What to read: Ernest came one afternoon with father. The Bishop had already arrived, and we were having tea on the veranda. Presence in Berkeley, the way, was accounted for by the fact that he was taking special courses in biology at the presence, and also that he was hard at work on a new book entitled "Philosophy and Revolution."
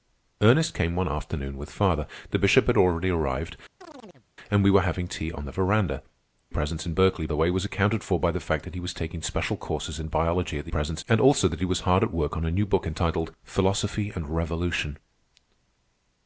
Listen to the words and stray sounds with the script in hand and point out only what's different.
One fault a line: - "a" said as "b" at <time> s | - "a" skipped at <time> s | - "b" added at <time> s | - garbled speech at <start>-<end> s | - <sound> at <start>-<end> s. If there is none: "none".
- chirp at 3.8-4.3 s